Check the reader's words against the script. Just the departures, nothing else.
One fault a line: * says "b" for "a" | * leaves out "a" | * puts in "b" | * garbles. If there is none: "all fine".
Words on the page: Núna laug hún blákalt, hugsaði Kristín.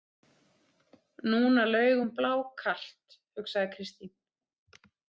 all fine